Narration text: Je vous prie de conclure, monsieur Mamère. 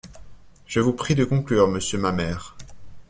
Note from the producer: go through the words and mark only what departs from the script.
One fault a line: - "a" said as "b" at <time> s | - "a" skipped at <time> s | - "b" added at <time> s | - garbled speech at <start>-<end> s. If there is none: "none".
none